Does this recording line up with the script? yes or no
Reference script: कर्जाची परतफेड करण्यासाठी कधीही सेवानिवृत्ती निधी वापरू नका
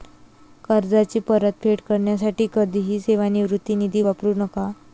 yes